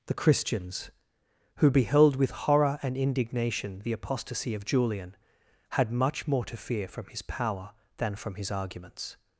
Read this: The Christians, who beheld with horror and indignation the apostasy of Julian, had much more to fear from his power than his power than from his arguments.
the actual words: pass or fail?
fail